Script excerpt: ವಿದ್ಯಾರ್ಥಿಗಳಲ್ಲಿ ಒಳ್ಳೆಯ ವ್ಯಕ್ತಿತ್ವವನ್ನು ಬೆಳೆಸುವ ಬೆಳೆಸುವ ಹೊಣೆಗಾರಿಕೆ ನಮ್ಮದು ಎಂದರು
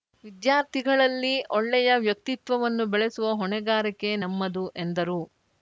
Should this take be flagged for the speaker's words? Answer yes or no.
yes